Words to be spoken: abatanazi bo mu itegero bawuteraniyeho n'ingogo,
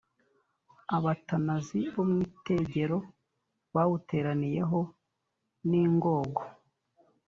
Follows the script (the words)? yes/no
yes